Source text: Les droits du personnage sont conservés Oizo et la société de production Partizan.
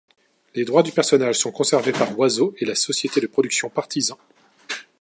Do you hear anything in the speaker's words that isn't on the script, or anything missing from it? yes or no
yes